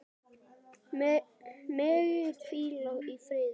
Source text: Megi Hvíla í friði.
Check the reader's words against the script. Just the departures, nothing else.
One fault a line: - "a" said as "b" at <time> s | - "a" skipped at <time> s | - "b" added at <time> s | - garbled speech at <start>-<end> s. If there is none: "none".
none